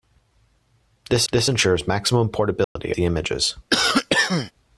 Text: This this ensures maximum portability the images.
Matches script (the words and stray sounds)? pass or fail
fail